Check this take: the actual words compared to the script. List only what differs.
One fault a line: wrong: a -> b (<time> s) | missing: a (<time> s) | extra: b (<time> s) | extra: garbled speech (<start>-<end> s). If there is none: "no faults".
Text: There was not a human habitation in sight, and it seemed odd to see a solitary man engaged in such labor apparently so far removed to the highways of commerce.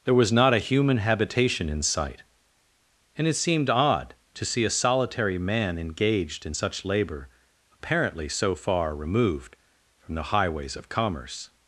wrong: to -> from (10.0 s)